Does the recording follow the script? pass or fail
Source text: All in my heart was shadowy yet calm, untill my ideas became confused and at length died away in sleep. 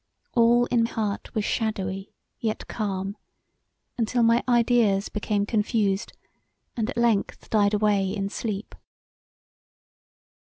fail